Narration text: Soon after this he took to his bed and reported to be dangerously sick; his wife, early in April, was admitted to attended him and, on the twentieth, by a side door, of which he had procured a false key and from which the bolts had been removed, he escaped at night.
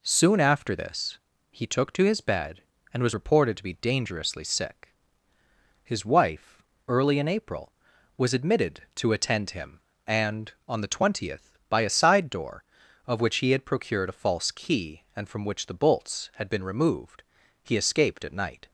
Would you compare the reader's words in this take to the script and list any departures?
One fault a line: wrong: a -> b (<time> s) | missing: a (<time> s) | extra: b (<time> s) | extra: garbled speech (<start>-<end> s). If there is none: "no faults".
extra: was (3.0 s)
wrong: attended -> attend (9.1 s)